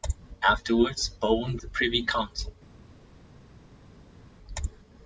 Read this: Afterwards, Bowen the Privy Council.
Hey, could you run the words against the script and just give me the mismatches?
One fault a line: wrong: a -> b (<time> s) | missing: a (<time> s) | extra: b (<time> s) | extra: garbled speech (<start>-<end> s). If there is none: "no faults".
no faults